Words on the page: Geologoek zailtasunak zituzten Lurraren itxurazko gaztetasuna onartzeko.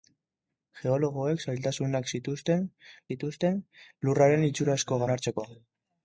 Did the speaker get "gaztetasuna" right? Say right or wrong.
wrong